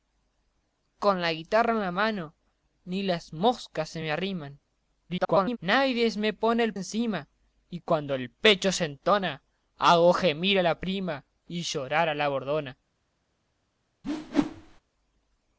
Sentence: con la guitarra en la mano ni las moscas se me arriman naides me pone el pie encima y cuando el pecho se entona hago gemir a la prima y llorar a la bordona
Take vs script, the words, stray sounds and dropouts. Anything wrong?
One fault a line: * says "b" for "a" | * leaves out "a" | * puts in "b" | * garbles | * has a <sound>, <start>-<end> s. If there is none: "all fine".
* garbles
* leaves out "pie"
* has a whoosh, 14.0-14.8 s